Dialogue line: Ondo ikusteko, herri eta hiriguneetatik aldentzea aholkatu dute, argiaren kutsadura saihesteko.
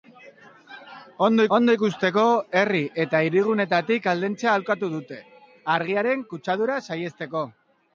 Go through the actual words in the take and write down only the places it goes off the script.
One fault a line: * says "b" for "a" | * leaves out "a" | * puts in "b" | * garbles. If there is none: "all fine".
* puts in "ondo"